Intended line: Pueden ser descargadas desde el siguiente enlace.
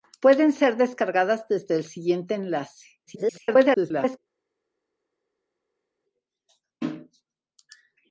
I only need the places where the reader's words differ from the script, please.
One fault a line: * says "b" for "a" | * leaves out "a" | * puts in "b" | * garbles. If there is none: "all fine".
* garbles